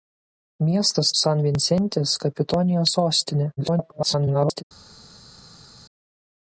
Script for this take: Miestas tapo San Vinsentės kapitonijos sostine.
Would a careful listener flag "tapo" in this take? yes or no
yes